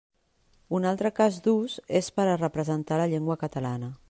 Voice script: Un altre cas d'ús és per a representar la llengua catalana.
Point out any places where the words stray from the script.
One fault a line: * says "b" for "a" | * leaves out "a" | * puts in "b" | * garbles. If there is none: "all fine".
all fine